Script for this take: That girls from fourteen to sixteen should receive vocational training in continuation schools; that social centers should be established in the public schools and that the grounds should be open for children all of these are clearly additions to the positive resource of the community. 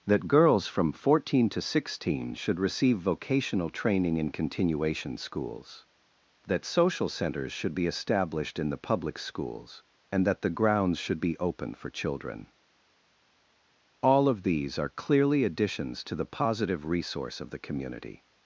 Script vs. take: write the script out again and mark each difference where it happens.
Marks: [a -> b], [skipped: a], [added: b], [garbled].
That girls from fourteen to sixteen should receive vocational training in continuation schools; that social centers should be established in the public schools and that the grounds should be open for children all of these are clearly additions to the positive resource of the community.